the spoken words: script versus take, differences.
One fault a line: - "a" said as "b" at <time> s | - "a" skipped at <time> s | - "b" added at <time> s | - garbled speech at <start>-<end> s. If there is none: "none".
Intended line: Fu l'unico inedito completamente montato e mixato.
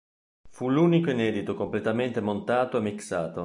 none